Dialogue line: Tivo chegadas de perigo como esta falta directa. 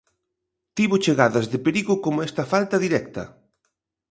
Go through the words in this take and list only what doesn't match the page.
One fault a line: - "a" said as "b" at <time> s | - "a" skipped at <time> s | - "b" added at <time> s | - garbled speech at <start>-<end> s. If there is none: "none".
none